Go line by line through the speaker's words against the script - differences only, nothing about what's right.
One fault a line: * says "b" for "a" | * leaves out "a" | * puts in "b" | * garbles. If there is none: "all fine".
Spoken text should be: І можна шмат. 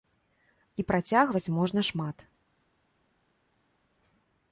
* puts in "працягваць"